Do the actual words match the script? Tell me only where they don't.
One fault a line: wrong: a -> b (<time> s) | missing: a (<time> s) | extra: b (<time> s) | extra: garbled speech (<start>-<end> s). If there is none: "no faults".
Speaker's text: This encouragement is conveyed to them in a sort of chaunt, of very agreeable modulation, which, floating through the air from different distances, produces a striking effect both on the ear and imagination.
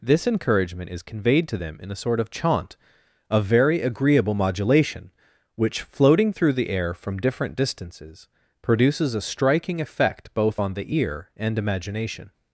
no faults